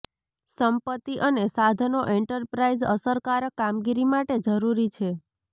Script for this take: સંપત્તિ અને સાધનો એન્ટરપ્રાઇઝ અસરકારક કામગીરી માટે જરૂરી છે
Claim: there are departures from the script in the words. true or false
false